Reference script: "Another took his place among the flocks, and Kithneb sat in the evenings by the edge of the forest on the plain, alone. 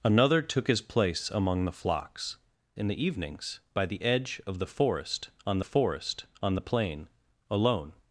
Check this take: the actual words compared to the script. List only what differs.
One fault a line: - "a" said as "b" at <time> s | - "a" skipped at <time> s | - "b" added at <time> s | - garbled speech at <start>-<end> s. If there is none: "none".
- "and Kithneb sat" skipped at 2.4 s
- "forest on" added at 5.6 s